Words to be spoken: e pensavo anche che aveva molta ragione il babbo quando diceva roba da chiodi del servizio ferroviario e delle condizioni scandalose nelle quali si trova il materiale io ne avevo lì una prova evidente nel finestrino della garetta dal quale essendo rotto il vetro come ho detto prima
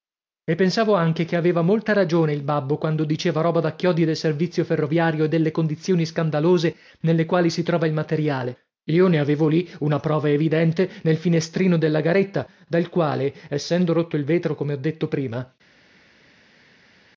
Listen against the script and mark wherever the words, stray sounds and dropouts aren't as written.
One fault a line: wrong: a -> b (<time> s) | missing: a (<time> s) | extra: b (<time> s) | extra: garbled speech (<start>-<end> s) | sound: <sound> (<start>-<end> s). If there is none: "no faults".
no faults